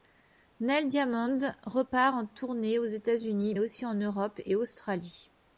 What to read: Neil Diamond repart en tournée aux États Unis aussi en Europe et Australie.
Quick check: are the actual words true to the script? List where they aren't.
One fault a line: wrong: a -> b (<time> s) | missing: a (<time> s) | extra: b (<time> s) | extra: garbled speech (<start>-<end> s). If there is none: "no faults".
no faults